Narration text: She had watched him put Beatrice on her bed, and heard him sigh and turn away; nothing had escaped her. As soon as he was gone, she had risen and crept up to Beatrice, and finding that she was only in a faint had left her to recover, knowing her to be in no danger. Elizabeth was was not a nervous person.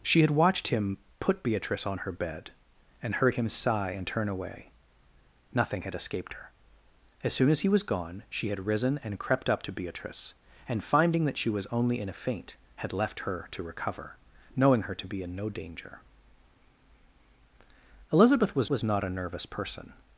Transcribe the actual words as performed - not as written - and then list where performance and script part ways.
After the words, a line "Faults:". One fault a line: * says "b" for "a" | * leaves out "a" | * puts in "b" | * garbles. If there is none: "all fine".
She had watched him put Beatrice on her bed, and heard him sigh and turn away; nothing had escaped her. As soon as he was gone, she had risen and crept up to Beatrice, and finding that she was only in a faint had left her to recover, knowing her to be in no danger. Elizabeth was was not a nervous person.
Faults:
all fine